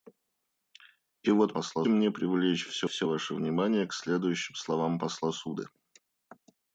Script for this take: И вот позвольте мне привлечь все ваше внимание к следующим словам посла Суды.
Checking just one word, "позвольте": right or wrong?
wrong